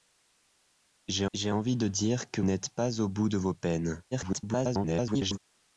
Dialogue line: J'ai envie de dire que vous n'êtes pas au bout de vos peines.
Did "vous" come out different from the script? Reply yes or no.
yes